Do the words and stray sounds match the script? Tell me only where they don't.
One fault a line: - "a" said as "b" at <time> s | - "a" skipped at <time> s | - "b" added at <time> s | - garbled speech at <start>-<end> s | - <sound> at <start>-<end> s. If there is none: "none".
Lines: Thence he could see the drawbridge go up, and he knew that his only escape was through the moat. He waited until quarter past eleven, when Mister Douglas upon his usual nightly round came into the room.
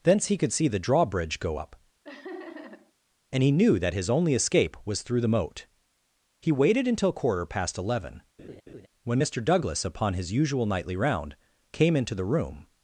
- laugh at 2.0-2.9 s
- laugh at 8.4-8.9 s